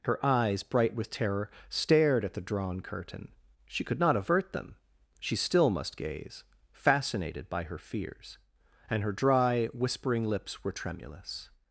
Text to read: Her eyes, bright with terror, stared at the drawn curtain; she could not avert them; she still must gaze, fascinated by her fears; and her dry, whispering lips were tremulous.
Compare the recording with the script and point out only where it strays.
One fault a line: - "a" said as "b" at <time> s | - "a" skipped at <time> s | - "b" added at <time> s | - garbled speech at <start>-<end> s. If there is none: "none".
none